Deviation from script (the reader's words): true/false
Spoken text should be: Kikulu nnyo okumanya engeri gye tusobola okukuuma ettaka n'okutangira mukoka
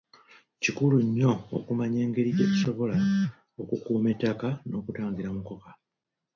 false